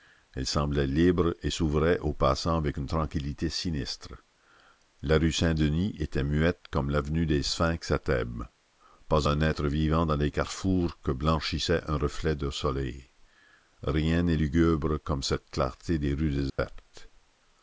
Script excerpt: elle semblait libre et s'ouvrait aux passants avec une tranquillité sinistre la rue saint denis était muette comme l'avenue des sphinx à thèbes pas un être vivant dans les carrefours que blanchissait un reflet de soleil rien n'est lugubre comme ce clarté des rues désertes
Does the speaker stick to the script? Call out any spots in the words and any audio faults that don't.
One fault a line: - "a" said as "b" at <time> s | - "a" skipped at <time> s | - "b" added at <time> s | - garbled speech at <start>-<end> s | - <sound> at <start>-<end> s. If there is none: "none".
- "ce" said as "cette" at 15.2 s
- dropout at 16.5-16.6 s